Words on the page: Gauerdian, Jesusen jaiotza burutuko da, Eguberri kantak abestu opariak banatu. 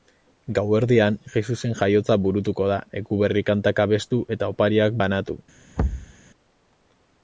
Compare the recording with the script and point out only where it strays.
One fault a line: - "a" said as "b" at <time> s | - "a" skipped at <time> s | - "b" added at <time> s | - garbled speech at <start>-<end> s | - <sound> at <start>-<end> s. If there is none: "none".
- "eta" added at 4.4 s
- thud at 5.8-6.1 s